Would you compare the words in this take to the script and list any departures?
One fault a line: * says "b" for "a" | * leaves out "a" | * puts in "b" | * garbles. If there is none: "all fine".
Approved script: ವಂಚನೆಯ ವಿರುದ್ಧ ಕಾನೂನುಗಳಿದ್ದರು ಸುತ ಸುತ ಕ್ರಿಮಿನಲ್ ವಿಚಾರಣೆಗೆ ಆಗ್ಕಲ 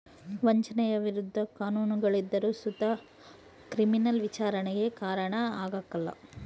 * leaves out "ಸುತ"
* puts in "ಕಾರಣ"